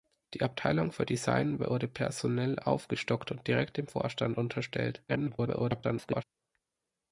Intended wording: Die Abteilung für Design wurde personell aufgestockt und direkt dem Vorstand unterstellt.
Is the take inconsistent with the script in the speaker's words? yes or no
yes